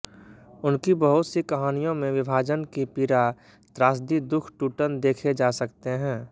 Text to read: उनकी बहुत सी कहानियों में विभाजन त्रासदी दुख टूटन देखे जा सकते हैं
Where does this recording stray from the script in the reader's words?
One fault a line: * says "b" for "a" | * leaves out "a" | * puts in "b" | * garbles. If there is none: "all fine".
* puts in "की पीड़ा"